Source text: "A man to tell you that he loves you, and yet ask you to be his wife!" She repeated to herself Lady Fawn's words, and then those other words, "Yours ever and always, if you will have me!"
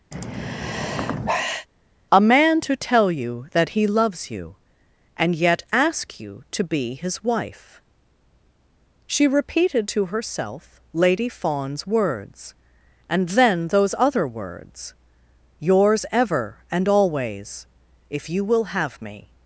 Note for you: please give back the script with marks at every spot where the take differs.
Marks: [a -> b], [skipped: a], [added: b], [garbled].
"A man to tell you that he loves you, and yet ask you to be his wife!" She repeated to herself Lady Fawn's words, and then those other words, "Yours ever and always, if you will have me!"